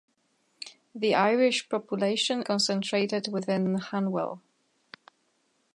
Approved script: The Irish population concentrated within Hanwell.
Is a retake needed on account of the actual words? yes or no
no